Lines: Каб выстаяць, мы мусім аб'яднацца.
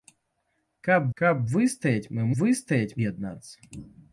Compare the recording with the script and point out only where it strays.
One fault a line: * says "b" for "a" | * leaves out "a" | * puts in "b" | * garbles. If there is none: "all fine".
* puts in "каб"
* says "выстаяць" for "мусім"